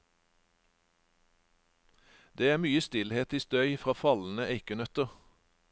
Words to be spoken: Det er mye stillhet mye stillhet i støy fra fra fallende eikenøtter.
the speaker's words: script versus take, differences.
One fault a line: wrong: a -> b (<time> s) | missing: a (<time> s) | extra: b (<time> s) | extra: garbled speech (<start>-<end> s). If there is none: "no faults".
missing: mye stillhet (3.3 s)
missing: fra (3.9 s)